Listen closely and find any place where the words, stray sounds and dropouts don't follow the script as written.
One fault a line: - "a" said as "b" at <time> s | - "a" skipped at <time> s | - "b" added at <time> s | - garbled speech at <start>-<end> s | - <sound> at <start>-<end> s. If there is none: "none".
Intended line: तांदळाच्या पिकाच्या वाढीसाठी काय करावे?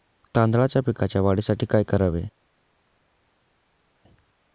none